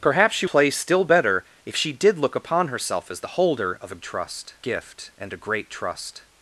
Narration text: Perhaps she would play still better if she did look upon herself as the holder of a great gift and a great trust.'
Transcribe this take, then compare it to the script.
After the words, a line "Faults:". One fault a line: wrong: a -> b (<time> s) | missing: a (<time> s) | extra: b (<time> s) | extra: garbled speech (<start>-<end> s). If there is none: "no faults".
Perhaps she play still better if she did look upon herself as the holder of a trust gift and a great trust.'
Faults:
missing: would (0.5 s)
wrong: great -> trust (4.0 s)